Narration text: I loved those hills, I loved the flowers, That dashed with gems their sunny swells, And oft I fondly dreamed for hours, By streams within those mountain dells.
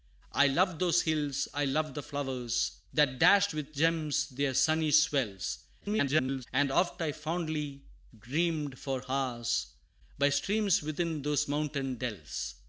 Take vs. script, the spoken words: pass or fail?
fail